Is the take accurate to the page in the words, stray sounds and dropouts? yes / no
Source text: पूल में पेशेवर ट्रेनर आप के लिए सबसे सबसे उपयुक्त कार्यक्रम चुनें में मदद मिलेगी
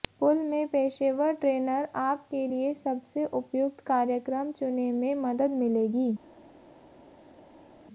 no